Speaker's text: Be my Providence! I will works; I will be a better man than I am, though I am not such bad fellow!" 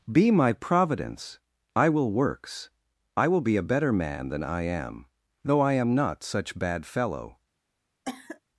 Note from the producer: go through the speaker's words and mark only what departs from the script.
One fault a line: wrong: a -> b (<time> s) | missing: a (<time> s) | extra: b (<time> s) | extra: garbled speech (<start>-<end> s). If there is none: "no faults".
no faults